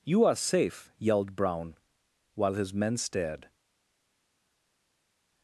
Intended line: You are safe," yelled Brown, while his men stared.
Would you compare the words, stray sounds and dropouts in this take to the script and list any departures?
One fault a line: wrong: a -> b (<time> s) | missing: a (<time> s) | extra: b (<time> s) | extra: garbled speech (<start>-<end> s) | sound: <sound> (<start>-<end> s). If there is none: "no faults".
no faults